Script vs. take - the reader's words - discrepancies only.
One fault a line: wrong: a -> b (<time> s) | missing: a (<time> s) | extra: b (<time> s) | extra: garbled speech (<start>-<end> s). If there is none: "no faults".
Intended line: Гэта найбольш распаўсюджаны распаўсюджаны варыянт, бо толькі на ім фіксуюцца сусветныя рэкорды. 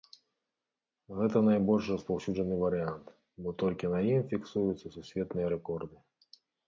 missing: распаўсюджаны (2.5 s)